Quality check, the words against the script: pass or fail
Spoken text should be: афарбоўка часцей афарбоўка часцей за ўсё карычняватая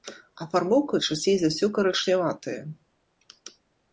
fail